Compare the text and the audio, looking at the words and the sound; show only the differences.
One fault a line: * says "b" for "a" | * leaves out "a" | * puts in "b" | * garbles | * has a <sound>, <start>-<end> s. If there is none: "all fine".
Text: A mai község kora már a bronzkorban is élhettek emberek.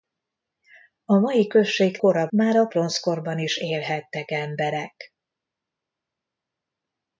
all fine